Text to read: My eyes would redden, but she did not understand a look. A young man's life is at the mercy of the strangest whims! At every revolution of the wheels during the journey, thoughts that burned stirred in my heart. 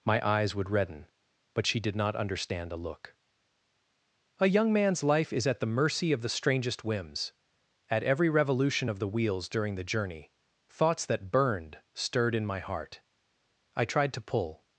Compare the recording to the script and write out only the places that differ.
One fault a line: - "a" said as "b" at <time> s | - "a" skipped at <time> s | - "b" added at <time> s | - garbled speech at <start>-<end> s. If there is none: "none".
- "I tried to pull" added at 13.7 s